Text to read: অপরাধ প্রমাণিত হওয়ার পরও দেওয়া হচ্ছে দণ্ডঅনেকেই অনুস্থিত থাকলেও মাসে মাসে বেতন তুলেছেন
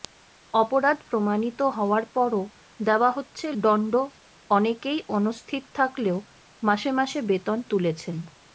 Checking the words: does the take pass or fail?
pass